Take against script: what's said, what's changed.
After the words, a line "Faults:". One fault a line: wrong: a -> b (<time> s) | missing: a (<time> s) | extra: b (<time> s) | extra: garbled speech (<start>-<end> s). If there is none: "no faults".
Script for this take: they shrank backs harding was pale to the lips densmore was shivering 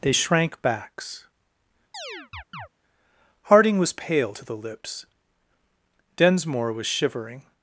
they shrank backs harding was pale to the lips densmore was shivering
Faults:
no faults